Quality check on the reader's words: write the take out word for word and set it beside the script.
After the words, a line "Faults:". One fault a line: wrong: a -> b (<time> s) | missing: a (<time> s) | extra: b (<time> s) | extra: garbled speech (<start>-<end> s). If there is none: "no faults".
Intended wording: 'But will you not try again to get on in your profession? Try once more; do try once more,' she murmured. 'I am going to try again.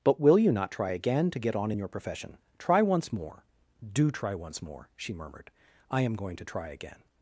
'But will you not try again to get on in your profession? Try once more; do try once more,' she murmured. 'I am going to try again.
Faults:
no faults